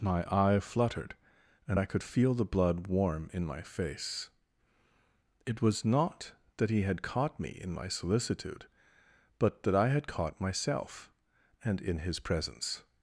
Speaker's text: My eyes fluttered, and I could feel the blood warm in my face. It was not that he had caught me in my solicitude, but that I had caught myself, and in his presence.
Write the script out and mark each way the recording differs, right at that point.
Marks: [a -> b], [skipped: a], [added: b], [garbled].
My [eyes -> eye] fluttered, and I could feel the blood warm in my face. It was not that he had caught me in my solicitude, but that I had caught myself, and in his presence.